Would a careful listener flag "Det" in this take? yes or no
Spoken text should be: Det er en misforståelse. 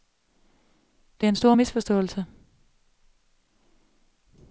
no